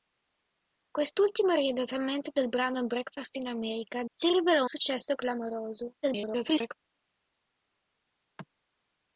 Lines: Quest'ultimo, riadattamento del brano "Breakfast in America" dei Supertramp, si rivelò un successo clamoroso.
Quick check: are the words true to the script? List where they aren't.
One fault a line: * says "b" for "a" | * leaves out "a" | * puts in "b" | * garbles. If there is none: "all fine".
* leaves out "dei Supertramp"
* leaves out "un"
* garbles